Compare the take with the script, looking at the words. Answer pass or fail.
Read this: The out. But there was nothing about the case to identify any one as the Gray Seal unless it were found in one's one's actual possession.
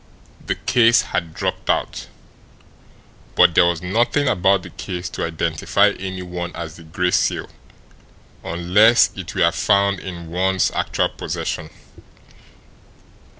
fail